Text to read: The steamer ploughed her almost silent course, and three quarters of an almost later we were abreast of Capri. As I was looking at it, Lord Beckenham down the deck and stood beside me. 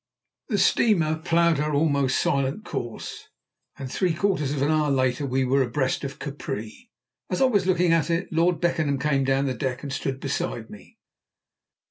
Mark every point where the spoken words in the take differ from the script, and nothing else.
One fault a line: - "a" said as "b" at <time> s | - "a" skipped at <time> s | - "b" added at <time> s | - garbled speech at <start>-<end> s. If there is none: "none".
- "almost" said as "hour" at 4.7 s
- "came" added at 9.0 s